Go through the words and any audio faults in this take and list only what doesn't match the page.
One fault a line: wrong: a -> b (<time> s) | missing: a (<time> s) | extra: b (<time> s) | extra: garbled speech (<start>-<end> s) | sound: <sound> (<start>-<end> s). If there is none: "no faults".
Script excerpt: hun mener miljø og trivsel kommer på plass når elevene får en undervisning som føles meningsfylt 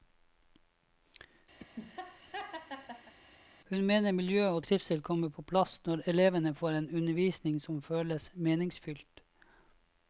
sound: laugh (1.6-3.1 s)